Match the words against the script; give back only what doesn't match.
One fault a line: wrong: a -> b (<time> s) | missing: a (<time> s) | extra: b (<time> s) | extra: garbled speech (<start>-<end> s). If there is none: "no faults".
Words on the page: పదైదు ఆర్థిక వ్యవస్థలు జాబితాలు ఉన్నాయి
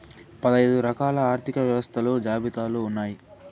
extra: రకాల (0.8 s)